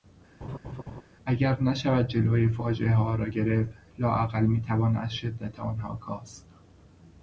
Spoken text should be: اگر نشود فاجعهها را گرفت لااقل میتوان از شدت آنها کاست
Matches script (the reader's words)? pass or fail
fail